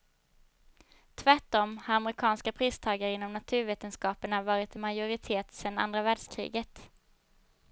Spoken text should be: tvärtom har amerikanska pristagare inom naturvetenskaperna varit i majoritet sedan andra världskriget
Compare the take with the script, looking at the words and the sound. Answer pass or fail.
pass